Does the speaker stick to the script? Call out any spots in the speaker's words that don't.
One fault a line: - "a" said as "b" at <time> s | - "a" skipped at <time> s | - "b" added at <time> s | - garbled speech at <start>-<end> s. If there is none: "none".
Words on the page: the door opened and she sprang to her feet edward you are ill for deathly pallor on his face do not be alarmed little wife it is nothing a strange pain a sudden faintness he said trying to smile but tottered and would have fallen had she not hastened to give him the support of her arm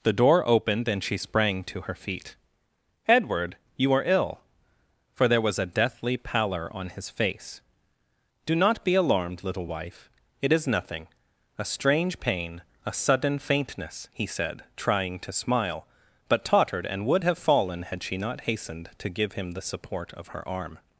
- "there was a" added at 5.3 s